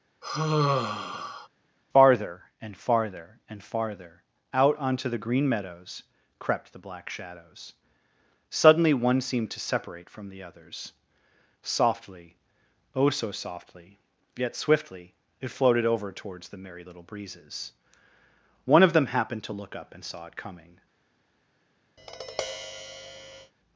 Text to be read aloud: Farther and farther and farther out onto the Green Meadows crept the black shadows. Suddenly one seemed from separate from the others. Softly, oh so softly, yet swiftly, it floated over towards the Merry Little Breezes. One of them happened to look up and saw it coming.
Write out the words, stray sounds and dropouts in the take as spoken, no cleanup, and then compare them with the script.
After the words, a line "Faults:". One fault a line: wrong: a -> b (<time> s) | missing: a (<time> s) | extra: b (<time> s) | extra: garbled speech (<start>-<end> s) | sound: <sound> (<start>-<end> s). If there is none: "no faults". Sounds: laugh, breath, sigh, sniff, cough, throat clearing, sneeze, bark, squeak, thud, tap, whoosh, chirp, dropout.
Farther and farther and farther out onto the Green Meadows crept the black shadows. Suddenly one seemed to separate from the others. Softly, oh so softly, yet swiftly, it floated over towards the Merry Little Breezes. One of them happened to look up and saw it coming.
Faults:
sound: sigh (0.2-1.5 s)
wrong: from -> to (9.5 s)
sound: tap (22.0-23.5 s)